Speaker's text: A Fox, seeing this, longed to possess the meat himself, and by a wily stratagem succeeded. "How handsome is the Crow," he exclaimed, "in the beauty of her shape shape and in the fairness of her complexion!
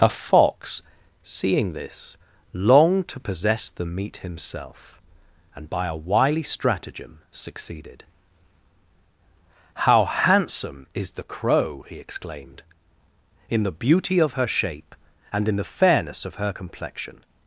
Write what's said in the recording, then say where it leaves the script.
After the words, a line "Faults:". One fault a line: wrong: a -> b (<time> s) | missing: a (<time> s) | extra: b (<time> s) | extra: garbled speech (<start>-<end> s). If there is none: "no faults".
A Fox, seeing this, longed to possess the meat himself, and by a wily stratagem succeeded. "How handsome is the Crow," he exclaimed, "in the beauty of her shape and in the fairness of her complexion!
Faults:
missing: shape (14.9 s)